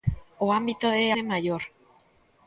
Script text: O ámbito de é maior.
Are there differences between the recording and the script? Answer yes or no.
no